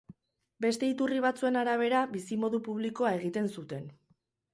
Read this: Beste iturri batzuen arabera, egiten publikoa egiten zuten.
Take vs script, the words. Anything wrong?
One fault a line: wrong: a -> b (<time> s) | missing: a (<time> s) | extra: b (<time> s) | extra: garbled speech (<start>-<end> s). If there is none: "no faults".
wrong: egiten -> bizimodu (2.1 s)